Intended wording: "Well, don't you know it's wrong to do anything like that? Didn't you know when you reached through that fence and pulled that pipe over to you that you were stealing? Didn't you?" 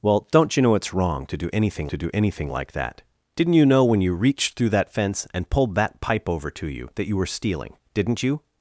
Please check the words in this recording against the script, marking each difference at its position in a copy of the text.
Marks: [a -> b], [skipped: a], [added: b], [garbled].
"Well, don't you know it's wrong to do anything [added: to do anything] like that? Didn't you know when you reached through that fence and pulled that pipe over to you that you were stealing? Didn't you?"